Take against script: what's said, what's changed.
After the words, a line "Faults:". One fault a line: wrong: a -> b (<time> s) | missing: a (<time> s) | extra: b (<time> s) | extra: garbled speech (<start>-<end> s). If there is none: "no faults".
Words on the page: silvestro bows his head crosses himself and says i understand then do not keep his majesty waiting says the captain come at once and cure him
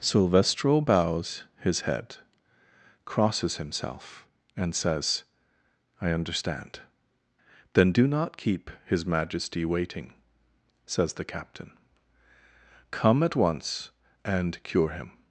silvestro bows his head crosses himself and says i understand then do not keep his majesty waiting says the captain come at once and cure him
Faults:
no faults